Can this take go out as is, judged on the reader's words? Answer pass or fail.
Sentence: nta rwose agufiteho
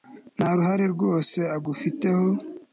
fail